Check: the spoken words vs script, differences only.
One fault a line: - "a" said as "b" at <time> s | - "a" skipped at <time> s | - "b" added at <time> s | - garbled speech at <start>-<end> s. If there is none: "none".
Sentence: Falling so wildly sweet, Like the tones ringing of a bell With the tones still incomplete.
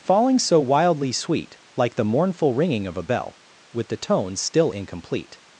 - "tones" said as "mournful" at 2.0 s